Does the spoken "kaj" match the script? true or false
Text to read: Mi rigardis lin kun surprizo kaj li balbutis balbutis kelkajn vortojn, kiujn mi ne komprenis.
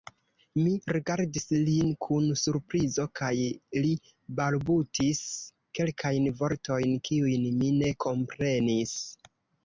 true